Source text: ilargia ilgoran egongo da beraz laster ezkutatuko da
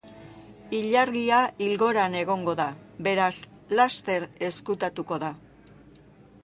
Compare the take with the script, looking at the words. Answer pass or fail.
pass